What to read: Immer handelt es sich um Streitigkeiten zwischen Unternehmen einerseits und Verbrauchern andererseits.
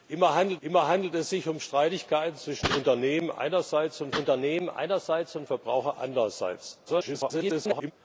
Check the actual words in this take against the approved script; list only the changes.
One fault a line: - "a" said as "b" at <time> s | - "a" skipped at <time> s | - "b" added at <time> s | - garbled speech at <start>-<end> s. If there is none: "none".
- "immer handelt" added at 0.6 s
- "Unternehmen einerseits und" added at 4.2 s
- garbled speech at 6.9-7.9 s